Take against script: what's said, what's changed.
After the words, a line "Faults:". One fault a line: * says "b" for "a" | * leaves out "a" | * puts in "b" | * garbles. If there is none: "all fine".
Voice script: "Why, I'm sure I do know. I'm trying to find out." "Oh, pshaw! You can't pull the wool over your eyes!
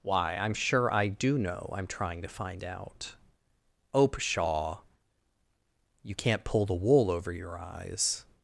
"Why, I'm sure I do know. I'm trying to find out." "Oh, pshaw! You can't pull the wool over your eyes!
Faults:
all fine